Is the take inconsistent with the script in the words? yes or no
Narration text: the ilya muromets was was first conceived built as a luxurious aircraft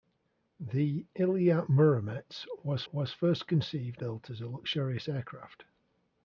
no